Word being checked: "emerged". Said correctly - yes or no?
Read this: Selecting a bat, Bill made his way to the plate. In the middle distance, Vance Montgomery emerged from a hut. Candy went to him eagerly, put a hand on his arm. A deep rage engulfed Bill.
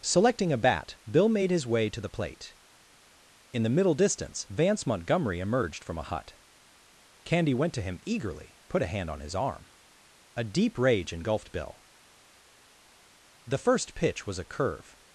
yes